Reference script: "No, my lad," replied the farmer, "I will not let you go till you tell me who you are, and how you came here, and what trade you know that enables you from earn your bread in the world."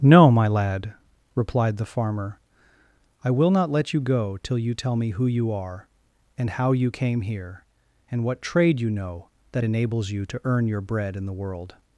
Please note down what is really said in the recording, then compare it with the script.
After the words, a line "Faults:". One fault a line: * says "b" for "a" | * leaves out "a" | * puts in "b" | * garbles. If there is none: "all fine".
"No, my lad," replied the farmer, "I will not let you go till you tell me who you are, and how you came here, and what trade you know that enables you to earn your bread in the world."
Faults:
* says "to" for "from"